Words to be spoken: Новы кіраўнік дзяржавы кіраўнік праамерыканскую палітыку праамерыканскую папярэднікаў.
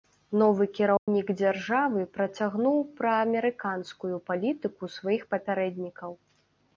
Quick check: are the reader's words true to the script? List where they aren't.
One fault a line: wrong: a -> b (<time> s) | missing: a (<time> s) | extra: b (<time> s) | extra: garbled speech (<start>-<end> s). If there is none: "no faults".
wrong: кіраўнік -> працягнуў (2.1 s)
wrong: праамерыканскую -> сваіх (5.0 s)